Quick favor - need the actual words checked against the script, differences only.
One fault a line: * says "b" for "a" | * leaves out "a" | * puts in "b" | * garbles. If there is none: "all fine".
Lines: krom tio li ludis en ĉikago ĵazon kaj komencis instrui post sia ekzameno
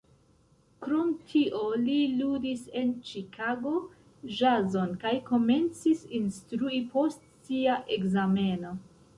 all fine